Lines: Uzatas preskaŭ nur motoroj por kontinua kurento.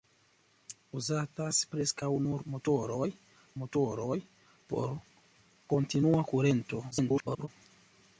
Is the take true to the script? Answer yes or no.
no